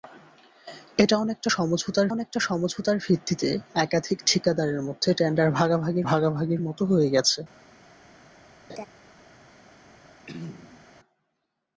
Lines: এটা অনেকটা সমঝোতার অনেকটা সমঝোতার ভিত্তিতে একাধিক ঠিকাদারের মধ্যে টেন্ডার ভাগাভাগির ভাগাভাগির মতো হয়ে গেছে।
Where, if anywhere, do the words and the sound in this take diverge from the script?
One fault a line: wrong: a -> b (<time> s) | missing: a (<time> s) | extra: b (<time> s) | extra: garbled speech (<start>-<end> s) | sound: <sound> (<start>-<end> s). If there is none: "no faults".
sound: laugh (8.7-8.9 s)
sound: throat clearing (10.3-10.9 s)